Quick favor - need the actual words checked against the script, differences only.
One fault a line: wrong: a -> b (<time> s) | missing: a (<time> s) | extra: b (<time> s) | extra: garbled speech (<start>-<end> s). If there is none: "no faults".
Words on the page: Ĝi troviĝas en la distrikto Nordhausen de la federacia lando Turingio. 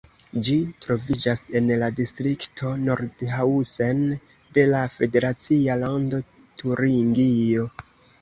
no faults